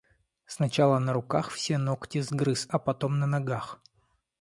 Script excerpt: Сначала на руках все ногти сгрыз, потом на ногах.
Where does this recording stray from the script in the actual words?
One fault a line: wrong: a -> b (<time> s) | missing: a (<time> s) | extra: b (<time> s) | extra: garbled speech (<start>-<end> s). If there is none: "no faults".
extra: а (2.7 s)